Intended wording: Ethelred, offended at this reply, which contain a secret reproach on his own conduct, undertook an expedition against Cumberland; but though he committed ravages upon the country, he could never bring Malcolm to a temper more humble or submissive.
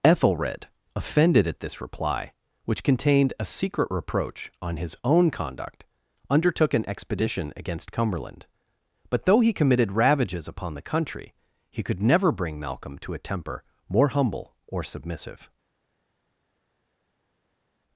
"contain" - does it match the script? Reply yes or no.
no